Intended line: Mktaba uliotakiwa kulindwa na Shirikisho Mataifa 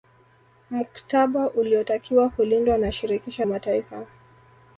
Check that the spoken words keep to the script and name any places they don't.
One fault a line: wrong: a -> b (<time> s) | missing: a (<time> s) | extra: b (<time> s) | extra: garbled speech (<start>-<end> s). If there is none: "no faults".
no faults